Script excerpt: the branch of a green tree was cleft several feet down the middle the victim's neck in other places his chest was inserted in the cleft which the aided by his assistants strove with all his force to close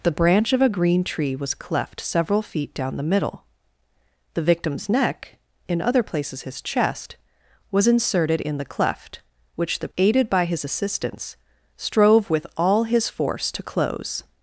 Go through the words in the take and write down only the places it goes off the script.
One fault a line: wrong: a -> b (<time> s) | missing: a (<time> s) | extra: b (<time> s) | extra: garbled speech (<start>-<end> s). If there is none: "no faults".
no faults